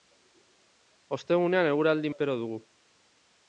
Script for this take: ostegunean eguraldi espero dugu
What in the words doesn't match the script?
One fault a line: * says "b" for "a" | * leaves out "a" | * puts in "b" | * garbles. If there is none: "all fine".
all fine